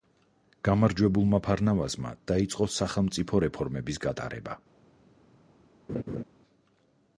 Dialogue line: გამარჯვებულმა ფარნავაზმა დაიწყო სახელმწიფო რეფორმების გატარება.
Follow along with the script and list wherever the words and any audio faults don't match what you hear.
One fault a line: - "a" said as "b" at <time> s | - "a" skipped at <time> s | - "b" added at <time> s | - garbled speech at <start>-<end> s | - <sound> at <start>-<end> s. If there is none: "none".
- laugh at 5.9-6.2 s